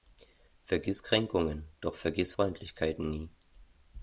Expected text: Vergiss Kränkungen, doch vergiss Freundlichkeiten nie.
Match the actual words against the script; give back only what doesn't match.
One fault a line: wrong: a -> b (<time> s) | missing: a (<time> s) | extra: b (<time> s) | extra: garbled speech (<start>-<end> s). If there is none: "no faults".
no faults